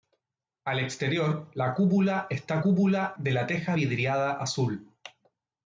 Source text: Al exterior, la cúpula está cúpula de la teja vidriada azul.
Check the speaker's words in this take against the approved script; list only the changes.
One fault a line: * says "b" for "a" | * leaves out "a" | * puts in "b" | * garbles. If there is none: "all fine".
all fine